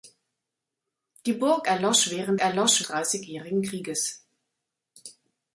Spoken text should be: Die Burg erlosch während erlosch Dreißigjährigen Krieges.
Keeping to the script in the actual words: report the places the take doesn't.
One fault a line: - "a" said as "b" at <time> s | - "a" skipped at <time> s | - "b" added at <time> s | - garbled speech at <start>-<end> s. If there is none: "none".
none